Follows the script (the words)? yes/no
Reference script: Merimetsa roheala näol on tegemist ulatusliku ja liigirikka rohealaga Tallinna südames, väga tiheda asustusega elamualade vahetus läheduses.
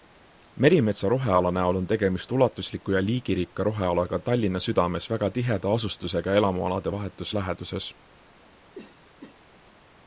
yes